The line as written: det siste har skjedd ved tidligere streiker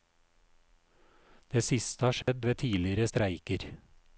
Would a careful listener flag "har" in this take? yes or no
no